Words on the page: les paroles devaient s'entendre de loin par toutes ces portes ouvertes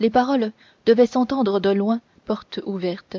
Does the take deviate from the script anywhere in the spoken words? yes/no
yes